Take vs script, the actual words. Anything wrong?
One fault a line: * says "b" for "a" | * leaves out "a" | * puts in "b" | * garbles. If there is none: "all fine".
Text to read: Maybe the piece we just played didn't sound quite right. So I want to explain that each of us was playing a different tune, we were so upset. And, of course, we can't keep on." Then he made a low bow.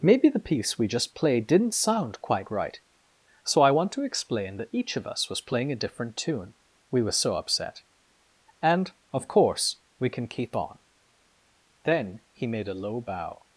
* says "can" for "can't"